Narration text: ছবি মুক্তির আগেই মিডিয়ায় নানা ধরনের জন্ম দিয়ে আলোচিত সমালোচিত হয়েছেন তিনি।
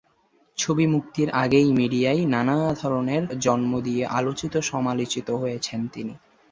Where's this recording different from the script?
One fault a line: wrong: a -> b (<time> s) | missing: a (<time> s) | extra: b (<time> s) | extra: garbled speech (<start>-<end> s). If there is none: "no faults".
no faults